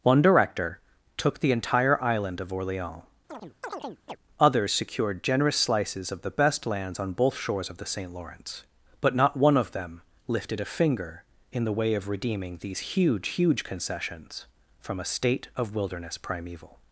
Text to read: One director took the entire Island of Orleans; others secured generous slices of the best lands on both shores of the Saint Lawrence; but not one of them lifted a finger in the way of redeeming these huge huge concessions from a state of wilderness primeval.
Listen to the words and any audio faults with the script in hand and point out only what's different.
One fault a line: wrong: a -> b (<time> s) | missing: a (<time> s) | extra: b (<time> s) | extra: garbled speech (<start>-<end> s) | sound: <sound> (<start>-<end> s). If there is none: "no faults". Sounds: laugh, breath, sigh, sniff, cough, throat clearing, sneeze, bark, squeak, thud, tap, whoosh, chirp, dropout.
sound: chirp (3.3-4.2 s)